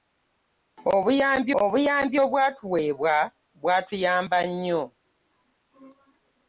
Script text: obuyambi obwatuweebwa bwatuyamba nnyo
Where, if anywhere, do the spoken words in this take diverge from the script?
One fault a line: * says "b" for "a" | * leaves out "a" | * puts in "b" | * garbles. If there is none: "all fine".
* puts in "obuyambi"